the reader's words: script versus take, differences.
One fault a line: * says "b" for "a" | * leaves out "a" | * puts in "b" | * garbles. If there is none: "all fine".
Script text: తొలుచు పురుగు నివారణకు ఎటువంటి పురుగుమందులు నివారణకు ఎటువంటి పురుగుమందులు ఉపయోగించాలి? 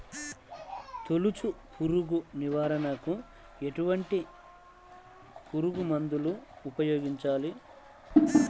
* leaves out "నివారణకు ఎటువంటి పురుగుమందులు"